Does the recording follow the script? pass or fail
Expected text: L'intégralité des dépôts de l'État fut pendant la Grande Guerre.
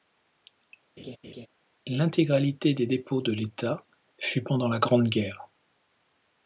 pass